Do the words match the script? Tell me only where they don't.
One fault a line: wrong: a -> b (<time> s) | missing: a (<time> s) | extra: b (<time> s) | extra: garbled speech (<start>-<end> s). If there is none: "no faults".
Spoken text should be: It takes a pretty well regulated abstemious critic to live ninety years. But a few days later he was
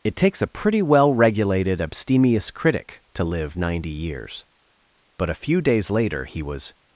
no faults